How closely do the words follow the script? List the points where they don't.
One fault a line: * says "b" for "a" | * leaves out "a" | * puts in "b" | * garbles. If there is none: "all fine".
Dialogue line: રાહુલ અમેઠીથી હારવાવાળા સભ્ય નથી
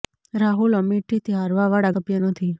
all fine